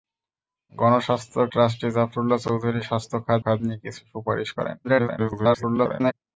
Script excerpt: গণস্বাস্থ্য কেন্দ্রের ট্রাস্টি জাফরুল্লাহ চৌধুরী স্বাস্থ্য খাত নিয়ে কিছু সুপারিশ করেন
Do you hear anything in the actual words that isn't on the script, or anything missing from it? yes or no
yes